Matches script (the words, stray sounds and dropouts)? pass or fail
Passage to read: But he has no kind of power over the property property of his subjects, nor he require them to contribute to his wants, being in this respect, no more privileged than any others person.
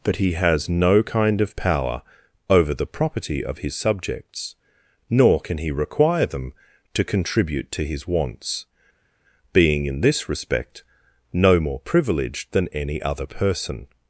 fail